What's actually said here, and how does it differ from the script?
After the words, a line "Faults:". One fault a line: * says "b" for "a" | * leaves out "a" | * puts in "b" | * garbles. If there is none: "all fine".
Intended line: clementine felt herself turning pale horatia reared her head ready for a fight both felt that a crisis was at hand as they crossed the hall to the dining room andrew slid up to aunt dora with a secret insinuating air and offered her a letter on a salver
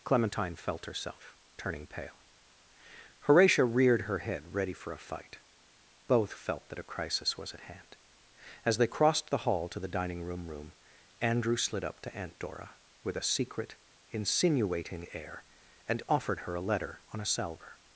clementine felt herself turning pale horatia reared her head ready for a fight both felt that a crisis was at hand as they crossed the hall to the dining room room andrew slid up to aunt dora with a secret insinuating air and offered her a letter on a salver
Faults:
* puts in "room"